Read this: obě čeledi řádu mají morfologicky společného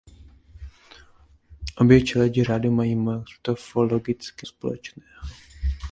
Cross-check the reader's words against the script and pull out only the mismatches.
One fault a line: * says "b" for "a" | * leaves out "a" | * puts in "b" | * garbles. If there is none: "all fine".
all fine